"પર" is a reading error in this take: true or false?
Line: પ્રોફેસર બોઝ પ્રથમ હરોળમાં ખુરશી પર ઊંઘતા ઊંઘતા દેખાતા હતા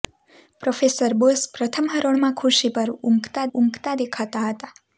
false